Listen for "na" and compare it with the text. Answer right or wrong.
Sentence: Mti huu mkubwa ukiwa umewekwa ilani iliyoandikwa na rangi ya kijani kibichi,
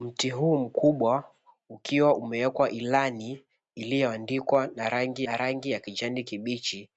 right